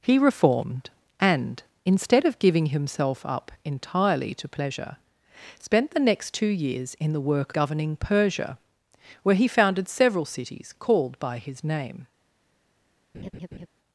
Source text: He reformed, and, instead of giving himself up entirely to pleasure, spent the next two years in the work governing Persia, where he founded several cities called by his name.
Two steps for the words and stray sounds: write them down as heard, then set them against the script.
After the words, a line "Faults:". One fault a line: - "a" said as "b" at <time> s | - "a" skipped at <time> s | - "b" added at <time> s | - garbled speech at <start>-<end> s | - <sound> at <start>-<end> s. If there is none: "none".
He reformed, and, instead of giving himself up entirely to pleasure, spent the next two years in the work governing Persia, where he founded several cities called by his name.
Faults:
- laugh at 13.1-13.7 s